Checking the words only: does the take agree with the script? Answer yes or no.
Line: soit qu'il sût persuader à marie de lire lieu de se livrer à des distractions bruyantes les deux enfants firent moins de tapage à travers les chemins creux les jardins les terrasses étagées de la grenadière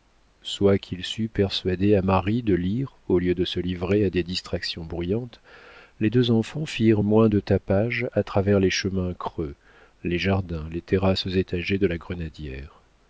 no